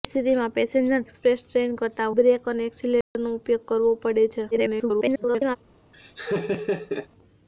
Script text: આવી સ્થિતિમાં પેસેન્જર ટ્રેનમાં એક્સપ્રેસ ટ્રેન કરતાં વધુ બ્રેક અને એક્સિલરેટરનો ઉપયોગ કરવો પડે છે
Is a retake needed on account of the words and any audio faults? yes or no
yes